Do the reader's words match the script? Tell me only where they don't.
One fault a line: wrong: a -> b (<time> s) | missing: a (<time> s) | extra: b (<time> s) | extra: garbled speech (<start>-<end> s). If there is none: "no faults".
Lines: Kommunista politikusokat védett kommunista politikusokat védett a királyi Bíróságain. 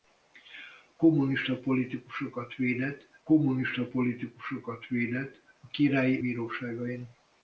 no faults